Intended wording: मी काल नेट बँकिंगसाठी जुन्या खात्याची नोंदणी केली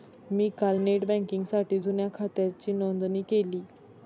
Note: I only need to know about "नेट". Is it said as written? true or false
true